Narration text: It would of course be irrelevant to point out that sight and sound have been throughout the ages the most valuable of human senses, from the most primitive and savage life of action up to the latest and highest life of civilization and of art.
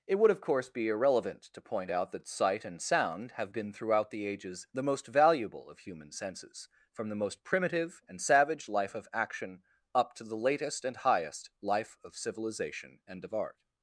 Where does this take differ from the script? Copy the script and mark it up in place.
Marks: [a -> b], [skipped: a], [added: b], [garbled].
It would of course be irrelevant to point out that sight and sound have been throughout the ages the most valuable of human senses, from the most primitive and savage life of action up to the latest and highest life of civilization and of art.